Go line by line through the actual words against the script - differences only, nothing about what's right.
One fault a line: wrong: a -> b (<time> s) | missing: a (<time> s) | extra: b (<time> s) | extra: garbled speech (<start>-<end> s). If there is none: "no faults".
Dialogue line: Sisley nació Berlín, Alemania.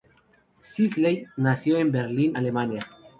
extra: en (1.8 s)